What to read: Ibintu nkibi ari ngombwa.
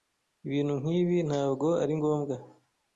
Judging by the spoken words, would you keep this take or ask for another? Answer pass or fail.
fail